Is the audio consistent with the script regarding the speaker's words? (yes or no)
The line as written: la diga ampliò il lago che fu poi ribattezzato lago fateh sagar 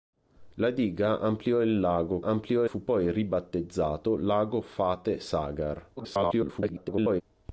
no